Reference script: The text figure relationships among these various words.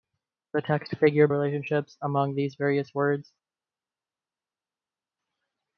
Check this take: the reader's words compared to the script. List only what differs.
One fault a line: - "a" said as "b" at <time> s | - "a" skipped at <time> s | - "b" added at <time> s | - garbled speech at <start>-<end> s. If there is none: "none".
none